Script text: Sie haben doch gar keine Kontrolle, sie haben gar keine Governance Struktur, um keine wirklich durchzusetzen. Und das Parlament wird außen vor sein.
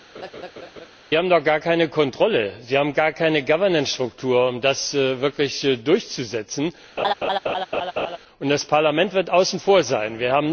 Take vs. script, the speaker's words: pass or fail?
fail